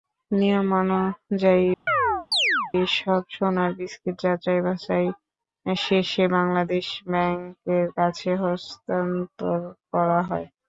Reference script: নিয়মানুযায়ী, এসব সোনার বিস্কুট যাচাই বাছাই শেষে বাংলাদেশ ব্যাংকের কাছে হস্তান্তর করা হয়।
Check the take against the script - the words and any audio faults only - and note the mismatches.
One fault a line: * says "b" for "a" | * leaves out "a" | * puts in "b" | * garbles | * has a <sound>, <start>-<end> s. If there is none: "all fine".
* has a chirp, 1.9-2.7 s